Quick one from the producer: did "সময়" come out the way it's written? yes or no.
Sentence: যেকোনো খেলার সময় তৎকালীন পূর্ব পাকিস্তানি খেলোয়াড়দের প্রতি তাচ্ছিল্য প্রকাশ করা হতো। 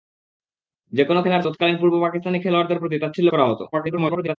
no